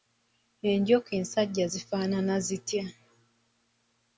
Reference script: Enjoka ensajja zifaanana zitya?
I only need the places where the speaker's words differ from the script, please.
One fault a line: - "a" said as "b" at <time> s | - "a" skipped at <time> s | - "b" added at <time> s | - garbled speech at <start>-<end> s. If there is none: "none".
none